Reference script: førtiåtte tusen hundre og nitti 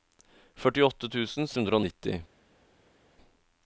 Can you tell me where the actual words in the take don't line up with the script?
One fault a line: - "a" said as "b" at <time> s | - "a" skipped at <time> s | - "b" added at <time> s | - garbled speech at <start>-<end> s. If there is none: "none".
none